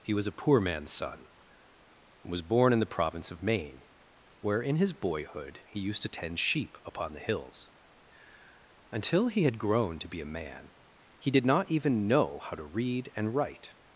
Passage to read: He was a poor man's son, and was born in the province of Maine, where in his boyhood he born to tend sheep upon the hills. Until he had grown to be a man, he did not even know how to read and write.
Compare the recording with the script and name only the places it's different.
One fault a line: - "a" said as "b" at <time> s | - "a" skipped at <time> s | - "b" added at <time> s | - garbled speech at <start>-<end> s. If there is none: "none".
- "born" said as "used" at 5.8 s